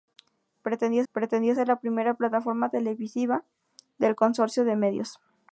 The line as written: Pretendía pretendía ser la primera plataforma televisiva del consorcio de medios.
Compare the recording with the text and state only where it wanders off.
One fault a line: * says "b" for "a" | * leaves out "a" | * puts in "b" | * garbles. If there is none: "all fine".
all fine